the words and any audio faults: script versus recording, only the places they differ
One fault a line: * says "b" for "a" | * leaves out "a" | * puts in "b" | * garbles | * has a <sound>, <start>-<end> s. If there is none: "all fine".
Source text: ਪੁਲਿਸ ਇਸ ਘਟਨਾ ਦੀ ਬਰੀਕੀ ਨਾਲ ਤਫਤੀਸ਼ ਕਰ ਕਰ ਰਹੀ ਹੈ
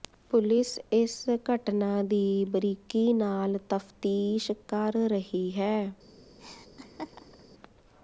* leaves out "ਕਰ"
* has a laugh, 6.4-7.4 s